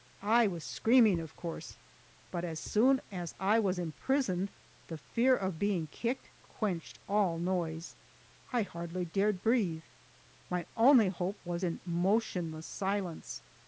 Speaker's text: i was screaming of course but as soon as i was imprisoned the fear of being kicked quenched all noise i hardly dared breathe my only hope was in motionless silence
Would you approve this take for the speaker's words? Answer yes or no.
yes